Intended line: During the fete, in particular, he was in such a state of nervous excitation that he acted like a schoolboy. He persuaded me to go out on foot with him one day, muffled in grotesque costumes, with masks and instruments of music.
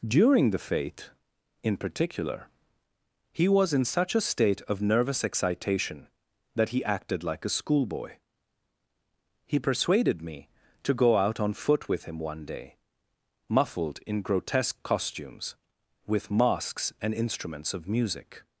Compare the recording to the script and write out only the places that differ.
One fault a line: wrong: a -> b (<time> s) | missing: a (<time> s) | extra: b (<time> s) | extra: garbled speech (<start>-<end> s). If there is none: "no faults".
no faults